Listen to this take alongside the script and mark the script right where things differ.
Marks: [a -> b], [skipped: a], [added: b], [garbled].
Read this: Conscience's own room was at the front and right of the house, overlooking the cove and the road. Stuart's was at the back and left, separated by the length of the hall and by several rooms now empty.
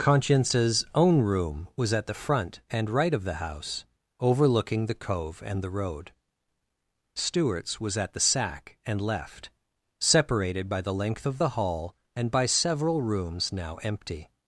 Conscience's own room was at the front and right of the house, overlooking the cove and the road. Stuart's was at the [back -> sack] and left, separated by the length of the hall and by several rooms now empty.